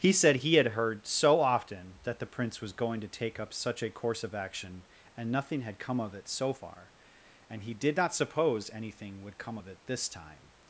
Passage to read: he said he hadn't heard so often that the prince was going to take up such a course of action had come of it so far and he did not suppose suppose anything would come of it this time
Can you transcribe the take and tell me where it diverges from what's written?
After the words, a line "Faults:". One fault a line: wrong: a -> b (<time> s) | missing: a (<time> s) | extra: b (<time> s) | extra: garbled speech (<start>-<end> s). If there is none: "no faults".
he said he had heard so often that the prince was going to take up such a course of action and nothing had come of it so far and he did not suppose anything would come of it this time
Faults:
wrong: hadn't -> had (0.5 s)
extra: and nothing (5.1 s)
missing: suppose (8.7 s)